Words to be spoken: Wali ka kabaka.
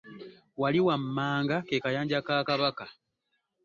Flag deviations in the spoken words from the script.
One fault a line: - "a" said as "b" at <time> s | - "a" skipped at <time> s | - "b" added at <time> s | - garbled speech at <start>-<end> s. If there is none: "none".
- "wammanga ke kayanja" added at 0.9 s